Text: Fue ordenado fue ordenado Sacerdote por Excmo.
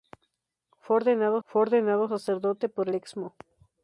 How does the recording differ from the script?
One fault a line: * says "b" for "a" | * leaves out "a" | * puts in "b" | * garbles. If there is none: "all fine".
all fine